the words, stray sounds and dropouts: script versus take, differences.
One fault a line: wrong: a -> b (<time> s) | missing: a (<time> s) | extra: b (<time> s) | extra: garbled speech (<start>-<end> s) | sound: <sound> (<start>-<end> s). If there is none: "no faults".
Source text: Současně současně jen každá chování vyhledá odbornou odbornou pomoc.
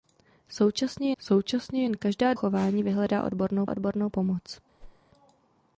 sound: whoosh (4.8-5.0 s)